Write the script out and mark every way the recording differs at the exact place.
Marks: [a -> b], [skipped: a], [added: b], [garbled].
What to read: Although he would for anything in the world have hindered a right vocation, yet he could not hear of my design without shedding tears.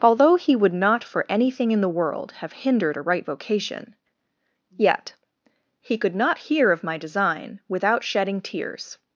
Although he would [added: not] for anything in the world have hindered a right vocation, yet he could not hear of my design without shedding tears.